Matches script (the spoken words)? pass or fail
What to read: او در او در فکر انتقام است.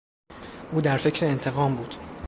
fail